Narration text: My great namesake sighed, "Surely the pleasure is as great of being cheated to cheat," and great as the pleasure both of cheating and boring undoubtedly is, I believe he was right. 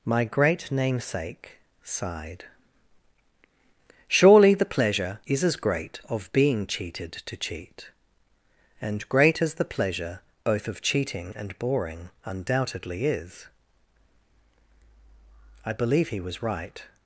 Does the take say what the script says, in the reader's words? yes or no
yes